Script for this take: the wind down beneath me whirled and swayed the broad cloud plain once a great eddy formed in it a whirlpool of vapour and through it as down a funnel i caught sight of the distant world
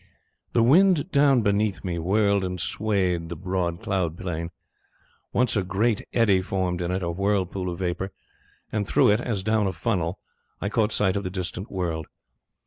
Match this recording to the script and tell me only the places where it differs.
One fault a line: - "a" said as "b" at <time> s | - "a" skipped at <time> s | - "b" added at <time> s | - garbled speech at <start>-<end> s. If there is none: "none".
none